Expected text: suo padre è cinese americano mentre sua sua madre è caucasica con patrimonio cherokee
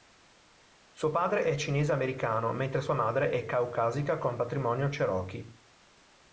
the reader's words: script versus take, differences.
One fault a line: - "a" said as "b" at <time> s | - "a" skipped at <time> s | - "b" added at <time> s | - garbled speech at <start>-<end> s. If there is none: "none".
- "sua" skipped at 3.0 s